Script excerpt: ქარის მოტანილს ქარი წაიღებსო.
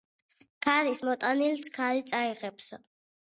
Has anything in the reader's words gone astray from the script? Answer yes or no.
no